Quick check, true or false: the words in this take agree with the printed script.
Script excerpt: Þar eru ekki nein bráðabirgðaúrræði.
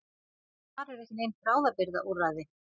true